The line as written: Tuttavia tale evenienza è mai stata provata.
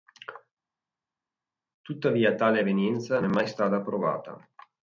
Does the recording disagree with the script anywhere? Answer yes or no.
no